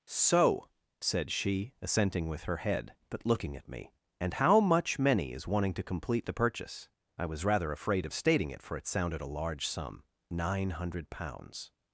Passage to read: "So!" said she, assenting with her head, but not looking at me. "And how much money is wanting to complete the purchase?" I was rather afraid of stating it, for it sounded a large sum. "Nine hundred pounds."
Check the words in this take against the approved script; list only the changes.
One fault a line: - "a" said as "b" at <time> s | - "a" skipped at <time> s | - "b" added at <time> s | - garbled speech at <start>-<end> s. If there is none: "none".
- "not" skipped at 3.2 s
- "money" said as "many" at 5.0 s